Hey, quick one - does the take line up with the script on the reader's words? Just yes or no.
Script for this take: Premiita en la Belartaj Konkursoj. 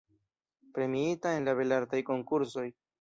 yes